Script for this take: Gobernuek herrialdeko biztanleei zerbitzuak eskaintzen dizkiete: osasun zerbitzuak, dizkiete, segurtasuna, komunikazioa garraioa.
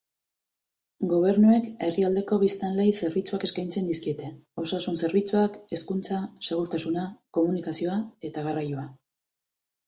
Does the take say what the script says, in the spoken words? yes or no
no